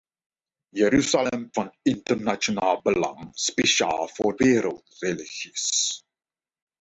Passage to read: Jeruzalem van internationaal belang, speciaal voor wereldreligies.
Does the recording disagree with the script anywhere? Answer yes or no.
no